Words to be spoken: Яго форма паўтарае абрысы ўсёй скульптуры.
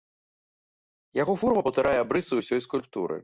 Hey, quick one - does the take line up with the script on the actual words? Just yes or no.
yes